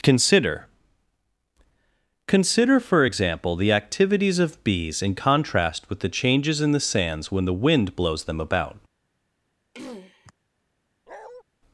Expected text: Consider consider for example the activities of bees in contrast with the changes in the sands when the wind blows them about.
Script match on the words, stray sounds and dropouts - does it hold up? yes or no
no